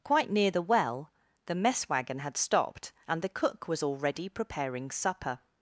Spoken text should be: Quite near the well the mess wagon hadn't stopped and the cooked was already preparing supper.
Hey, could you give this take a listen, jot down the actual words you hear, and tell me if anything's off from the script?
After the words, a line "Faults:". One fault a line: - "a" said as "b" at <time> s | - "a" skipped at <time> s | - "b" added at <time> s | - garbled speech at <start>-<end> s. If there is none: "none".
Quite near the well the mess wagon had stopped and the cook was already preparing supper.
Faults:
- "hadn't" said as "had" at 2.2 s
- "cooked" said as "cook" at 3.3 s